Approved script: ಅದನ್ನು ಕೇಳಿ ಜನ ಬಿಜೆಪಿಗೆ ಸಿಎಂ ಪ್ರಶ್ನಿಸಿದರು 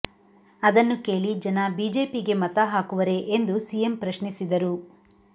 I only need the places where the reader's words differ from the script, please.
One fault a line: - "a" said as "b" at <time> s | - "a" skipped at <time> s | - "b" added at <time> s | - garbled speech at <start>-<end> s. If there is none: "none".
- "ಮತ ಹಾಕುವರೇ ಎಂದು" added at 2.4 s